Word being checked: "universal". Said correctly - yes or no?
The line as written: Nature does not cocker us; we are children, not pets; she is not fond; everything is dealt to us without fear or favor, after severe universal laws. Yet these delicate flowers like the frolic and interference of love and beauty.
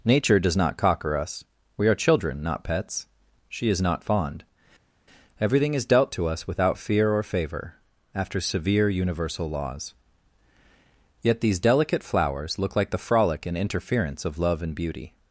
yes